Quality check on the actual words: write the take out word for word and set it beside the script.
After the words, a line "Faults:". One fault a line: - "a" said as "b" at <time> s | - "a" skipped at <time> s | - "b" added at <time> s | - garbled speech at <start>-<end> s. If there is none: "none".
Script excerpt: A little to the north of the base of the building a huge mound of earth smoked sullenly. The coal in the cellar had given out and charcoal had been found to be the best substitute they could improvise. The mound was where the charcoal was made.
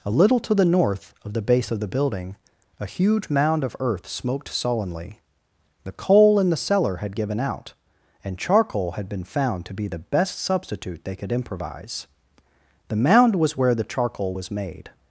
A little to the north of the base of the building a huge mound of earth smoked sullenly. The coal in the cellar had given out and charcoal had been found to be the best substitute they could improvise. The mound was where the charcoal was made.
Faults:
none